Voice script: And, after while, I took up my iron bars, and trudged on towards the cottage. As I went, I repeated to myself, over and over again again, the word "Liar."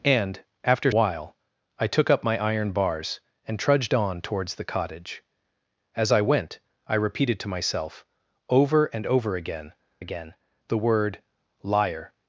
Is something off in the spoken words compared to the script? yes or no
no